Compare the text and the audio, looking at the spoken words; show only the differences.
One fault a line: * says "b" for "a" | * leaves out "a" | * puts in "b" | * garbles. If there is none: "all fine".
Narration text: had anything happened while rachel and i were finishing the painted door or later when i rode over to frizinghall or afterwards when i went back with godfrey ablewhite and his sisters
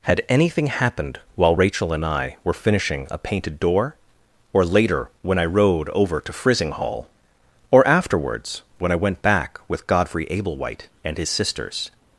* says "a" for "the"